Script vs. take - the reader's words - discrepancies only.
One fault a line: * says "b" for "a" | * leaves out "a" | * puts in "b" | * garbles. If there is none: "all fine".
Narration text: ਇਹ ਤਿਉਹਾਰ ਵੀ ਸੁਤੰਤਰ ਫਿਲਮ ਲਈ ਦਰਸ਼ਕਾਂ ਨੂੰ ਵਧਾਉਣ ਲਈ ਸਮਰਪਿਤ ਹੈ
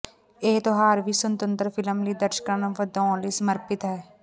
all fine